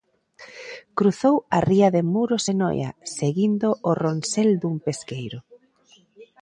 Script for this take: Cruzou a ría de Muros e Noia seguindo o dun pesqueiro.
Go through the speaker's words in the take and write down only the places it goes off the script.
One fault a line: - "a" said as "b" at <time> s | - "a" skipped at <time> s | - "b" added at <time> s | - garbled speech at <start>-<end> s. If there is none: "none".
- "ronsel" added at 4.0 s